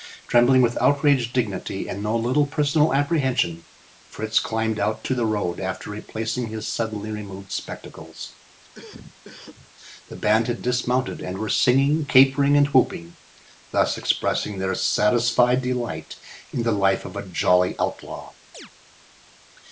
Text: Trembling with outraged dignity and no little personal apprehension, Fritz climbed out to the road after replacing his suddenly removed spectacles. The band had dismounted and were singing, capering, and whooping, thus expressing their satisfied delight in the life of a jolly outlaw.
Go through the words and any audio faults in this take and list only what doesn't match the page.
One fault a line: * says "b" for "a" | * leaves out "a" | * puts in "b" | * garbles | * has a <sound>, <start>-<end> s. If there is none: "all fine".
* has a cough, 8.7-9.7 s
* has a chirp, 18.5-18.7 s